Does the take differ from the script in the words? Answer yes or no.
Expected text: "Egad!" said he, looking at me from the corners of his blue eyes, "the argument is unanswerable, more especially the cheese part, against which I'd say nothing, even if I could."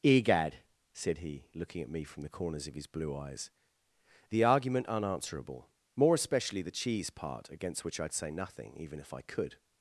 yes